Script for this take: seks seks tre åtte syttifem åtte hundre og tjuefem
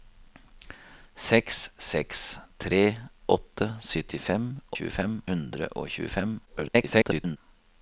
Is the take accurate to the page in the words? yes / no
no